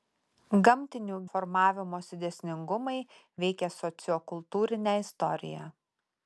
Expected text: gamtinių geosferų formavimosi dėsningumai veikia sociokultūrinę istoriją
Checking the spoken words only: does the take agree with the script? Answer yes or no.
no